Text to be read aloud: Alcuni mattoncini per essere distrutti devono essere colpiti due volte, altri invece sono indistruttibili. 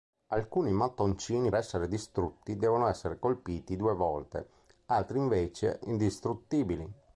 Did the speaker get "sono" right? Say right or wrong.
wrong